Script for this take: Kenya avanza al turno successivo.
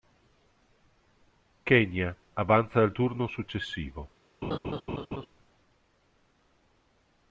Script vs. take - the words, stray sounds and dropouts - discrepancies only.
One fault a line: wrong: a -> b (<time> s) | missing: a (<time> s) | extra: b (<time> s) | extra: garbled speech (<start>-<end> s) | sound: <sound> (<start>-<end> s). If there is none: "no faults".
sound: laugh (4.4-5.3 s)